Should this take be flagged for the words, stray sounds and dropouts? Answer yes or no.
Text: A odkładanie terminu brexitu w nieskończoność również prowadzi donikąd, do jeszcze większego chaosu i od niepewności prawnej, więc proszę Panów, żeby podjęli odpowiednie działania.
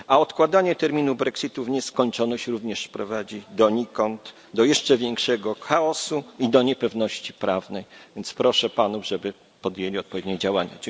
yes